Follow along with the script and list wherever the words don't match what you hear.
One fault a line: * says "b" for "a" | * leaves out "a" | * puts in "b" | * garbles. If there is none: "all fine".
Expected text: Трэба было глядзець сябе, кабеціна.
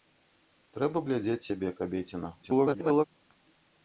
* leaves out "было"
* garbles